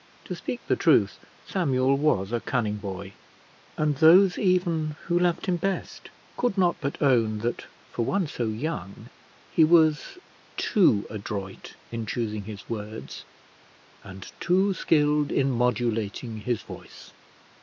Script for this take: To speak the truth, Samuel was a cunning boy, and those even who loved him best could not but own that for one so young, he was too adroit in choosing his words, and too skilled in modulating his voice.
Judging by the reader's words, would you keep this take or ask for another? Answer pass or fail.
pass